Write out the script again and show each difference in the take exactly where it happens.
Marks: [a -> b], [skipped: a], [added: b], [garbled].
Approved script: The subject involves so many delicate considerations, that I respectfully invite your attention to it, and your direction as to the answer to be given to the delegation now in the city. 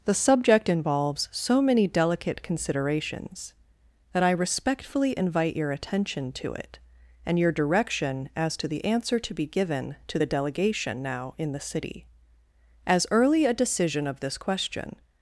The subject involves so many delicate considerations, that I respectfully invite your attention to it, and your direction as to the answer to be given to the delegation now in the city. [added: As early a decision of this question]